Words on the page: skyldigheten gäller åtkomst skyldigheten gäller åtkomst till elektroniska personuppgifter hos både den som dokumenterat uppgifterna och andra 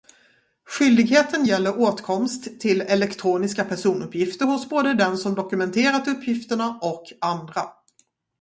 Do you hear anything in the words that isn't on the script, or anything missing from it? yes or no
yes